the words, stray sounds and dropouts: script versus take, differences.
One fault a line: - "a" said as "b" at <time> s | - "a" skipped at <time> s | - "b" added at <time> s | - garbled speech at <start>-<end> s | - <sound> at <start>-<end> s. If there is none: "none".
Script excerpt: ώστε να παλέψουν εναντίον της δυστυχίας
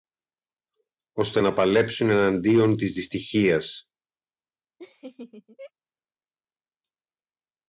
- laugh at 4.8-5.7 s